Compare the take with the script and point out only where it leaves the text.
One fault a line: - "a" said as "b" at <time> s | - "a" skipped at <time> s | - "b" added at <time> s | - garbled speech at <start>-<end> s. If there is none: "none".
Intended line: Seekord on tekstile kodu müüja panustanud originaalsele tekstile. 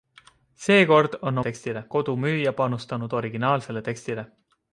none